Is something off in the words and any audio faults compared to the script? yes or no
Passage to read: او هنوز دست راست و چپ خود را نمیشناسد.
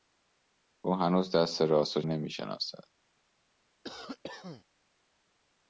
yes